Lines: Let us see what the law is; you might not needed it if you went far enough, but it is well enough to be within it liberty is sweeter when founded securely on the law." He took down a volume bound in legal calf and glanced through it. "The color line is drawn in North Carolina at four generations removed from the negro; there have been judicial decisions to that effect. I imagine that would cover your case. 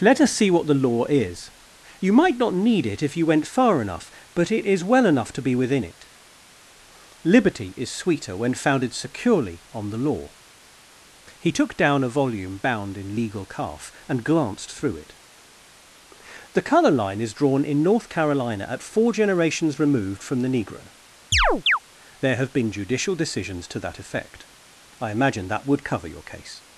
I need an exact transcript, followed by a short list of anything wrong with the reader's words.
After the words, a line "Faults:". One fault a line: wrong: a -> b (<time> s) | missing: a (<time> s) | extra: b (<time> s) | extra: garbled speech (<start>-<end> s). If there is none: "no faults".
Let us see what the law is; you might not need it if you went far enough, but it is well enough to be within it liberty is sweeter when founded securely on the law." He took down a volume bound in legal calf and glanced through it. "The color line is drawn in North Carolina at four generations removed from the negro; there have been judicial decisions to that effect. I imagine that would cover your case.
Faults:
wrong: needed -> need (2.5 s)